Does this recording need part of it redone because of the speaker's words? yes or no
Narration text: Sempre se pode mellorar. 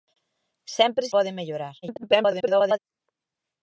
yes